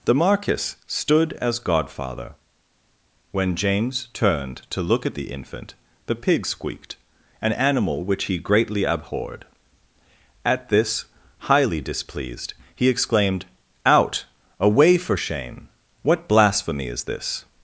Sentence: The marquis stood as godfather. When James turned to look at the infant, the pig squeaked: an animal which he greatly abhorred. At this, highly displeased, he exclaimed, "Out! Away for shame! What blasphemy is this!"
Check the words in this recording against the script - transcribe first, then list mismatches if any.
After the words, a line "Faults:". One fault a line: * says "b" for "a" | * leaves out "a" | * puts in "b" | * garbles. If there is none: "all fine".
The marquis stood as godfather. When James turned to look at the infant, the pig squeaked: an animal which he greatly abhorred. At this, highly displeased, he exclaimed, "Out! Away for shame! What blasphemy is this!"
Faults:
all fine